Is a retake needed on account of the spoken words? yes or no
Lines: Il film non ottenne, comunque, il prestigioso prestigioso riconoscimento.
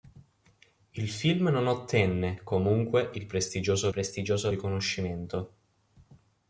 no